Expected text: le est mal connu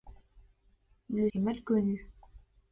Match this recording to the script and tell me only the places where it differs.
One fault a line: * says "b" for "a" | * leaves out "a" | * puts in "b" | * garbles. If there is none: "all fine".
all fine